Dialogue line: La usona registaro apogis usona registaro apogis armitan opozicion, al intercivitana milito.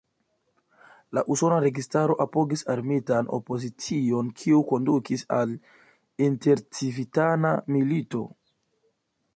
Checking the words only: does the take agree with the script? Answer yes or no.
no